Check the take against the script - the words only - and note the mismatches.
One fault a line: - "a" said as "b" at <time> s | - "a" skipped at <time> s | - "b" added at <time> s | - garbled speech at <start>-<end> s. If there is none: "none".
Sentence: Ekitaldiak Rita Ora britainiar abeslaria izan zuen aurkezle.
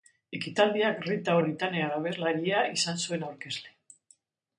- "Ora" skipped at 1.4 s